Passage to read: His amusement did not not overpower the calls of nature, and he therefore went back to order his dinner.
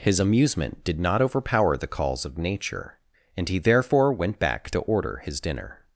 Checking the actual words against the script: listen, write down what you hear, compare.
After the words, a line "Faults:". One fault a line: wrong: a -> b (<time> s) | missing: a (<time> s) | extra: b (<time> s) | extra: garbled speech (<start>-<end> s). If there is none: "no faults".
His amusement did not overpower the calls of nature, and he therefore went back to order his dinner.
Faults:
missing: not (1.2 s)